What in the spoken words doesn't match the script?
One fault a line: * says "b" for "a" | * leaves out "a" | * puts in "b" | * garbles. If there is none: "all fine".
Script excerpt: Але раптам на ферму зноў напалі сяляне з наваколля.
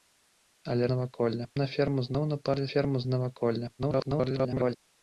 * says "наваколля" for "раптам"
* says "ферму" for "сяляне"
* garbles